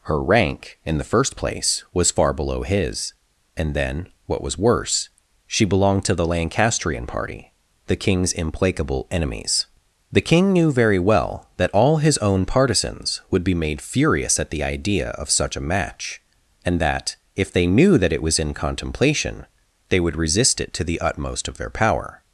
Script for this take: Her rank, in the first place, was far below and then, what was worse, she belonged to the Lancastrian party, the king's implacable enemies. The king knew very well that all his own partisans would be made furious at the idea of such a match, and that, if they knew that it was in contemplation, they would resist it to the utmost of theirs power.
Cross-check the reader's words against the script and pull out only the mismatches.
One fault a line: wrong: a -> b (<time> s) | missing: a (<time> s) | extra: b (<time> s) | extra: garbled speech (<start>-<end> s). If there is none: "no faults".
extra: his (2.6 s)
wrong: theirs -> their (21.6 s)